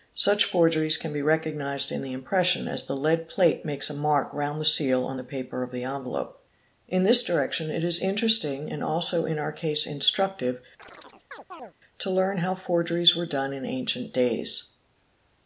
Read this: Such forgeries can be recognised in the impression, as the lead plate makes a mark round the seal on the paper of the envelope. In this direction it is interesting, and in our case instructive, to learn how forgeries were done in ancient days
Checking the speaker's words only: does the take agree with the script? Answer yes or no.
no